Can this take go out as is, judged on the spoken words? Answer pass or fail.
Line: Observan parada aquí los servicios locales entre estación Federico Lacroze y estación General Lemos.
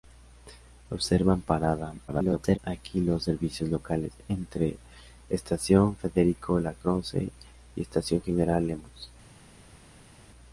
fail